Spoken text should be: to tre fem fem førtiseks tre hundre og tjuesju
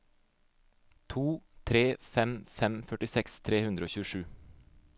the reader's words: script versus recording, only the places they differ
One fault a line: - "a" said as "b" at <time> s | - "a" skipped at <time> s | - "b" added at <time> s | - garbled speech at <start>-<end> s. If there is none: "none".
none